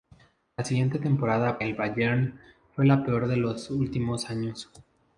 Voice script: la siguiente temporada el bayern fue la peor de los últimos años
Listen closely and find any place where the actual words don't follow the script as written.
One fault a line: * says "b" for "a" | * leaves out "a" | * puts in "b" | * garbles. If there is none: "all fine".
all fine